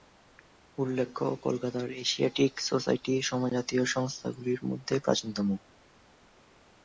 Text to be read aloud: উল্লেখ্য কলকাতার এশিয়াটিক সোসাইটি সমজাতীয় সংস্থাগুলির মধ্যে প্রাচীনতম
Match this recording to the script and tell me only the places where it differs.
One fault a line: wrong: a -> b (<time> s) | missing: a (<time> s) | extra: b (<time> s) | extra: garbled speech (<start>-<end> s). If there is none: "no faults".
no faults